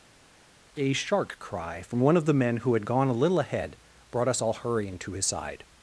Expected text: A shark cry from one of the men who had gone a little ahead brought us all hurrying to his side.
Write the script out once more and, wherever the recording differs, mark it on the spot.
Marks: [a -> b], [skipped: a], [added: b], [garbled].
A shark cry from one of the men who had gone a little ahead brought us all hurrying to his side.